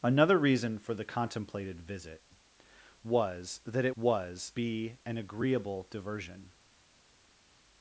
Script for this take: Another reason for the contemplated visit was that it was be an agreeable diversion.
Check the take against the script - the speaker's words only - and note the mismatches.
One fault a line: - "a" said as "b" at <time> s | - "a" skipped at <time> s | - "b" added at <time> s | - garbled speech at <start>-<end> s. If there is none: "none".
none